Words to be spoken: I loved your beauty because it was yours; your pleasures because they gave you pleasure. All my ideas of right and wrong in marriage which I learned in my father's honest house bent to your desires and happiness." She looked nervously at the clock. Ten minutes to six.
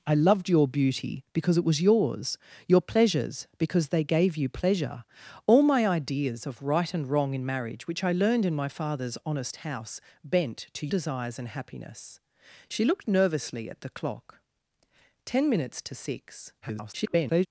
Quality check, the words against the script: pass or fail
fail